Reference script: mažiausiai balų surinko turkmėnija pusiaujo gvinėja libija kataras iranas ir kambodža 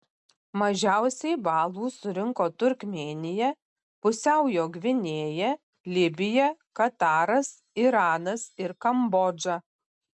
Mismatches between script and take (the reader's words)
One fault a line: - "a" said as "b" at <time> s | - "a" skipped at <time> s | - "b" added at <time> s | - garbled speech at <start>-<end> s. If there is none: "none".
none